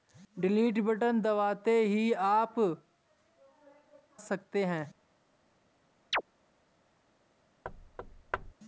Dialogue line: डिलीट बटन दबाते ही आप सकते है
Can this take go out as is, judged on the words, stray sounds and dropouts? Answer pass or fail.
fail